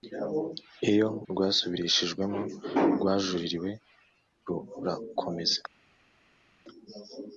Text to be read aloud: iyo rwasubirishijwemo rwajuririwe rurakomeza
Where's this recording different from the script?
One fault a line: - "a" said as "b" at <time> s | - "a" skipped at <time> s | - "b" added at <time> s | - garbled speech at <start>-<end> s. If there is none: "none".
none